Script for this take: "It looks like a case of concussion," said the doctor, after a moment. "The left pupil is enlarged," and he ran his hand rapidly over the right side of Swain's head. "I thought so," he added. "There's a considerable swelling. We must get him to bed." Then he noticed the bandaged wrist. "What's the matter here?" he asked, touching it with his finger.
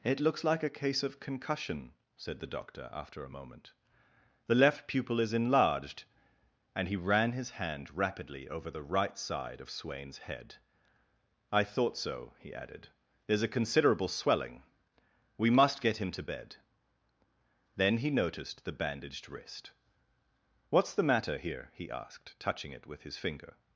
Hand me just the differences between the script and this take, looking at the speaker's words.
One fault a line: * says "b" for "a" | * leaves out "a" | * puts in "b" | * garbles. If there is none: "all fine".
all fine